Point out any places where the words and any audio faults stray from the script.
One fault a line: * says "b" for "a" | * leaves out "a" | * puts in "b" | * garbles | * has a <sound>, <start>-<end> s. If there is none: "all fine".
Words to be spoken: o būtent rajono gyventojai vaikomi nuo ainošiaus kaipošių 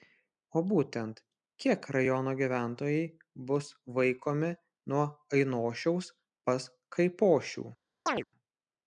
* puts in "kiek"
* puts in "bus"
* puts in "pas"
* has a chirp, 8.1-8.2 s